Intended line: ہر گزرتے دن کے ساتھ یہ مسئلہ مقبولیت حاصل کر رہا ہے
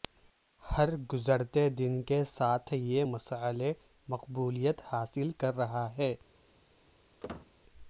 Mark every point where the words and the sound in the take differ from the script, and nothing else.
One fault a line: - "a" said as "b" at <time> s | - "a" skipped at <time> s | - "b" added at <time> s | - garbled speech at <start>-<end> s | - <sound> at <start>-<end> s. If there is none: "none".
- squeak at 7.2-7.5 s